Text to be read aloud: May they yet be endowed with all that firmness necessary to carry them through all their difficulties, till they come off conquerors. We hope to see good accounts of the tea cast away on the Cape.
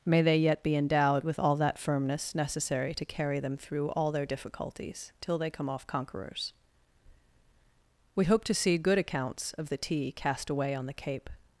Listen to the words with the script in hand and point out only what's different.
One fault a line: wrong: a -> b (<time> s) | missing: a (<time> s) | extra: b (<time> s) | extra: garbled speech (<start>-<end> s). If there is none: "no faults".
no faults